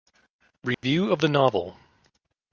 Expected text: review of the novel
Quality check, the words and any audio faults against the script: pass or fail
fail